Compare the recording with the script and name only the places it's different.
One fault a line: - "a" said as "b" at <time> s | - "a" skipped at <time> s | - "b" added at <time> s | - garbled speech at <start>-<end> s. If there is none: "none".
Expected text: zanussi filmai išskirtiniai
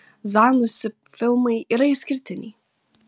- "yra" added at 1.8 s